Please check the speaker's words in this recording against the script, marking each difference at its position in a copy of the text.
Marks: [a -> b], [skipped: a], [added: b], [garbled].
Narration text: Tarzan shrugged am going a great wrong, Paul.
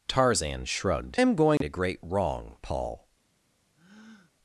Tarzan shrugged am going a great wrong, Paul.